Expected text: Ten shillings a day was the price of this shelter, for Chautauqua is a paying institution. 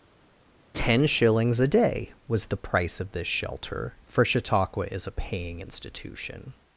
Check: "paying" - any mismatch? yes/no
no